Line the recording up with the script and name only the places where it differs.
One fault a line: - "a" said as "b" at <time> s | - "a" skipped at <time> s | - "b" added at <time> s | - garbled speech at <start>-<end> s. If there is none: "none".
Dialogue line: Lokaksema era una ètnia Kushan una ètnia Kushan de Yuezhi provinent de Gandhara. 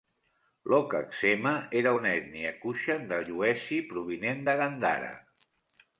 - "una ètnia Kushan" skipped at 3.0 s